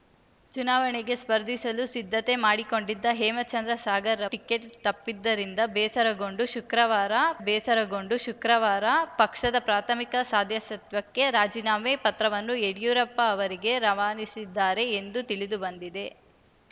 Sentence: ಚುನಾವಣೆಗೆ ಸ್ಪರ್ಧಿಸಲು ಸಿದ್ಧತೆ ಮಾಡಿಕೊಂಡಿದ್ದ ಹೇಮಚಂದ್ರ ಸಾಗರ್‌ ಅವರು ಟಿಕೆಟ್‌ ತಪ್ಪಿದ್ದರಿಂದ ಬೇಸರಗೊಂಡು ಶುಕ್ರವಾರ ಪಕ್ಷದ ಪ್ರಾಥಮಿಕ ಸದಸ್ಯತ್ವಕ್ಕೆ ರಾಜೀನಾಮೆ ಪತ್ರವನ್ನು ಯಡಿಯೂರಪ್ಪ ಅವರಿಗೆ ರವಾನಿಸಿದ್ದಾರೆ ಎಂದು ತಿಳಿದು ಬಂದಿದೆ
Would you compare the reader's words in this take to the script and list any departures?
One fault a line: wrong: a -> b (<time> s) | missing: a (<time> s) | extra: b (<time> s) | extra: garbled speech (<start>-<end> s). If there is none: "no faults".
missing: ಅವರು (4.2 s)
extra: ಬೇಸರಗೊಂಡು ಶುಕ್ರವಾರ (7.4 s)